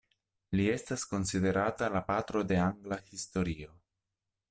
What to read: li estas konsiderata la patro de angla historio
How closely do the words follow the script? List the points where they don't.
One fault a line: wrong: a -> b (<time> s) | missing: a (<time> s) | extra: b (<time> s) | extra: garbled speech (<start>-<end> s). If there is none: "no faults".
no faults